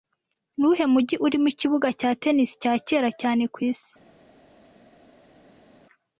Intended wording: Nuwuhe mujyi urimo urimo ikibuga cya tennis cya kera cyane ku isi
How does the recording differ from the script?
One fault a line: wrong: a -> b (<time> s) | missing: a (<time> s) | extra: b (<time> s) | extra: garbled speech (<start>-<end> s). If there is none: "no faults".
missing: urimo (1.5 s)